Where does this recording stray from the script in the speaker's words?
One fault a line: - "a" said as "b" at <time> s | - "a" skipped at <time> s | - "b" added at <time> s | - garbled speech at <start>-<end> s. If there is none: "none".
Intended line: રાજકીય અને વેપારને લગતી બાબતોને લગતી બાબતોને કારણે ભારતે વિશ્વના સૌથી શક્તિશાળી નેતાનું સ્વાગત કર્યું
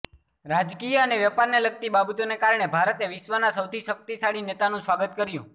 - "લગતી બાબતોને" skipped at 2.4 s